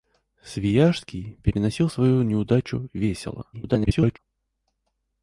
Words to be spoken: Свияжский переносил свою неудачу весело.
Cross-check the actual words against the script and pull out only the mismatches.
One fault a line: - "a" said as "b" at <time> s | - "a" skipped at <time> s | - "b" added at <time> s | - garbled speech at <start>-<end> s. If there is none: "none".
- garbled speech at 3.5-4.2 s